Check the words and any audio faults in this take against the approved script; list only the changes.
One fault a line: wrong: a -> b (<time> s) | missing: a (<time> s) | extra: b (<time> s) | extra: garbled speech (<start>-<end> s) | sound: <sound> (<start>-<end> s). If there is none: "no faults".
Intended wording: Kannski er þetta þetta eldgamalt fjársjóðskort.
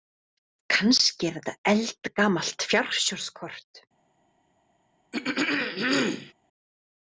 missing: þetta (1.5 s)
sound: throat clearing (5.1-6.3 s)